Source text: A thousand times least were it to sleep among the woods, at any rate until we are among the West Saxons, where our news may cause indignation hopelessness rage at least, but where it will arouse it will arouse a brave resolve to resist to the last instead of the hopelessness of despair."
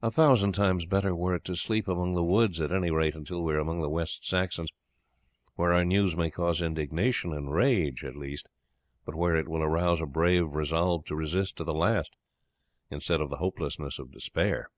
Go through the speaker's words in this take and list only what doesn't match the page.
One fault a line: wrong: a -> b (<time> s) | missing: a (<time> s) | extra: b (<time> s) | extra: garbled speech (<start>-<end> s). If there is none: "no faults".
wrong: least -> better (0.9 s)
wrong: hopelessness -> and (7.3 s)
missing: it will arouse (10.0 s)